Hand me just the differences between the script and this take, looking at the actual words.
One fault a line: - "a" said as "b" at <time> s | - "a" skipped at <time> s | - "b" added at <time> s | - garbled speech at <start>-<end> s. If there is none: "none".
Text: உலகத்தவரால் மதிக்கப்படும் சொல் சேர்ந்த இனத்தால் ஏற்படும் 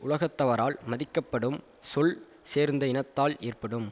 none